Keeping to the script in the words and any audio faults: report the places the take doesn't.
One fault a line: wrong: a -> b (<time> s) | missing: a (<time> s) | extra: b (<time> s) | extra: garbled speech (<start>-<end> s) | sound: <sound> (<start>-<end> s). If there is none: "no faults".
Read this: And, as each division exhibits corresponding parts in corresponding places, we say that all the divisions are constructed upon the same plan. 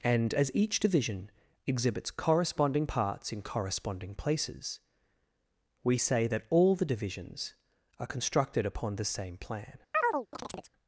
sound: chirp (9.9-10.7 s)